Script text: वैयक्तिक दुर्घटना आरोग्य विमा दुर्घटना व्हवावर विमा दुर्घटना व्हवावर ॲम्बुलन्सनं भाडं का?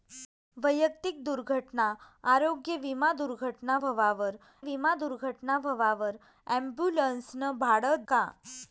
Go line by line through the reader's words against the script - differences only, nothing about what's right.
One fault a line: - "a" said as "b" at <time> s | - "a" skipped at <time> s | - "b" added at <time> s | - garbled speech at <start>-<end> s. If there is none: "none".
none